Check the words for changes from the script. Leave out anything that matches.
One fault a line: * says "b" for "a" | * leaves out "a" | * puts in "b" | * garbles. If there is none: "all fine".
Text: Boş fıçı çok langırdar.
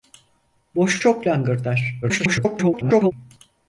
* leaves out "fıçı"
* garbles